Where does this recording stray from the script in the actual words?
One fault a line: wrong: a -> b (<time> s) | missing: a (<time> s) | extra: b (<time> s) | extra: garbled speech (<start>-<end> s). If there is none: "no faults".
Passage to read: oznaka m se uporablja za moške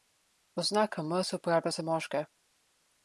no faults